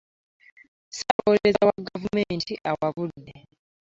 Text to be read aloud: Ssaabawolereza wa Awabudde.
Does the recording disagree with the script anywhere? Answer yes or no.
yes